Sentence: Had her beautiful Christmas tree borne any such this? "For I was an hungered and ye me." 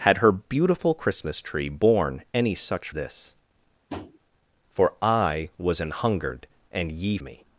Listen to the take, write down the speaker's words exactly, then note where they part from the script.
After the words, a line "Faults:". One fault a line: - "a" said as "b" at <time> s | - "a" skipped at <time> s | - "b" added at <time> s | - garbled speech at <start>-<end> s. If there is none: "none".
Had her beautiful Christmas tree borne any such this? "For I was an hungered and ye me."
Faults:
none